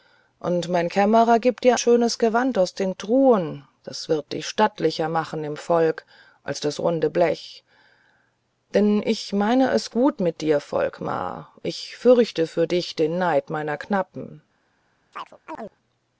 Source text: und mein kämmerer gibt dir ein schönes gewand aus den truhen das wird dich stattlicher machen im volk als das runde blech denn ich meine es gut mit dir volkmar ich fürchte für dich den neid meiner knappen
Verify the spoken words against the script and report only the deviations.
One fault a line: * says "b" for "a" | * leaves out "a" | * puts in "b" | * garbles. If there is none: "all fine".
* leaves out "ein"